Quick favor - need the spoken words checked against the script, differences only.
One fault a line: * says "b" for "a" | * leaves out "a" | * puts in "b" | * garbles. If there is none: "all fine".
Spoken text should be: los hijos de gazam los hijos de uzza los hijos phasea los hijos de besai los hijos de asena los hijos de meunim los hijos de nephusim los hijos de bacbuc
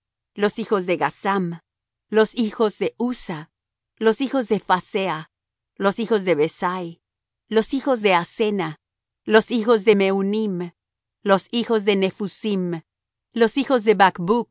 * puts in "de"